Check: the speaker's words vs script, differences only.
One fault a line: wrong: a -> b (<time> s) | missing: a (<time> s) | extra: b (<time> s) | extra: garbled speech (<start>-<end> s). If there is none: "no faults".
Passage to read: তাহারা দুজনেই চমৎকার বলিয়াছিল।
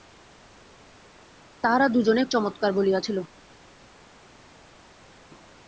no faults